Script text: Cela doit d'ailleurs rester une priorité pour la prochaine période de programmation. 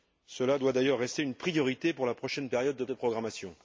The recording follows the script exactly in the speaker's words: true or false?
false